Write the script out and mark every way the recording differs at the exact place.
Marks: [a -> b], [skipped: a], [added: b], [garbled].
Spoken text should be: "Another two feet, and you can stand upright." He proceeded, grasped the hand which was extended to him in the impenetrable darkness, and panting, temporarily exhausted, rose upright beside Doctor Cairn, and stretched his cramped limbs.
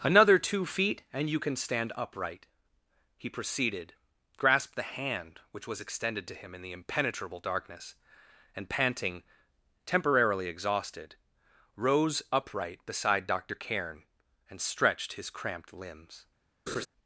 "Another two feet, and you can stand upright." He proceeded, grasped the hand which was extended to him in the impenetrable darkness, and panting, temporarily exhausted, rose upright beside Doctor Cairn, and stretched his cramped limbs.